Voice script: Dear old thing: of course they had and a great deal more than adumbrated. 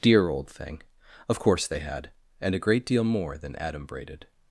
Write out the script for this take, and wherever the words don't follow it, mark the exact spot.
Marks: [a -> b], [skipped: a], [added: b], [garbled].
Dear old thing: of course they had and a great deal more than adumbrated.